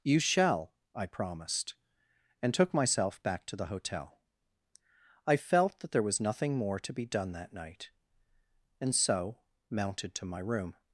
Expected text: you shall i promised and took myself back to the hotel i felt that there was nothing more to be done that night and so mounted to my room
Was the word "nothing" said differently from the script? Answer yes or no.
no